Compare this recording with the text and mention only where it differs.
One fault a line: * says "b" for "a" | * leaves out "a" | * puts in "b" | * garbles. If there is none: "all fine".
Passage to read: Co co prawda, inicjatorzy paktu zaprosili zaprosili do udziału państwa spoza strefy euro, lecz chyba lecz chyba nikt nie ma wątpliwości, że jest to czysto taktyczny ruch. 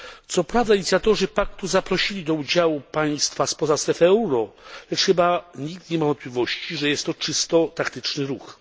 * leaves out "co"
* leaves out "zaprosili"
* leaves out "lecz chyba"